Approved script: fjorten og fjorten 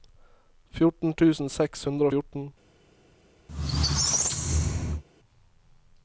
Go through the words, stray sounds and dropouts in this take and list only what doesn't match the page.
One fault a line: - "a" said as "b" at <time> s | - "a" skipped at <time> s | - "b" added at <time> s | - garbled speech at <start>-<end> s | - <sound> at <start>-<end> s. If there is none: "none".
- "tusen seks hundre" added at 1.2 s
- squeak at 3.5-5.0 s